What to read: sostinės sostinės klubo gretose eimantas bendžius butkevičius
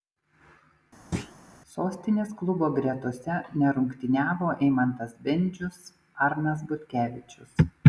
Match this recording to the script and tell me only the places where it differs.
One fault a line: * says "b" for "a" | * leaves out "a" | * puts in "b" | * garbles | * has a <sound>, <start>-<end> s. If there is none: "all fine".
* has a thud, 1.1-1.4 s
* leaves out "sostinės"
* puts in "nerungtyniavo"
* puts in "arnas"